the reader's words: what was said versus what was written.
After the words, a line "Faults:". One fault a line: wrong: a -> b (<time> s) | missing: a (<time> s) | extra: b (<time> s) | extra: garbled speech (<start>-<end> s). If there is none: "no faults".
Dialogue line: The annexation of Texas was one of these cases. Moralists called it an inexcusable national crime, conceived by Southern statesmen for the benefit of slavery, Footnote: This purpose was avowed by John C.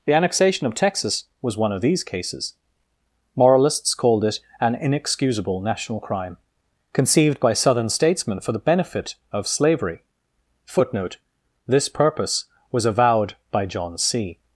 The annexation of Texas was one of these cases. Moralists called it an inexcusable national crime, conceived by Southern statesmen for the benefit of slavery, Footnote: This purpose was avowed by John C.
Faults:
no faults